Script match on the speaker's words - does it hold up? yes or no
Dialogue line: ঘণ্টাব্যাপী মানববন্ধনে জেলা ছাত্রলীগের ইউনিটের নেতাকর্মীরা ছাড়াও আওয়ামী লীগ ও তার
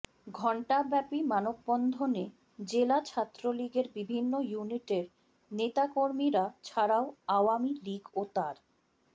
no